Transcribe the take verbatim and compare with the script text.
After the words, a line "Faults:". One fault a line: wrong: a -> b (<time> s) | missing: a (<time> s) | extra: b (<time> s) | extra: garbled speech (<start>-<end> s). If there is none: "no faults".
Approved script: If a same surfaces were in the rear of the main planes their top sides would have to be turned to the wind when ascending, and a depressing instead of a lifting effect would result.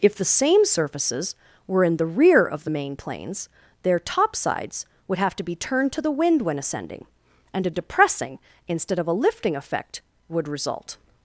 If the same surfaces were in the rear of the main planes their top sides would have to be turned to the wind when ascending, and a depressing instead of a lifting effect would result.
Faults:
wrong: a -> the (0.1 s)